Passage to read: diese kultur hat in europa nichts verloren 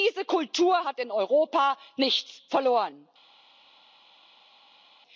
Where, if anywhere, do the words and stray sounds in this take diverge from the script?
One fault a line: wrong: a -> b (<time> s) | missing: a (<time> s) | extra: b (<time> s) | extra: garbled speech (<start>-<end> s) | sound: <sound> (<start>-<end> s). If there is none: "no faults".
no faults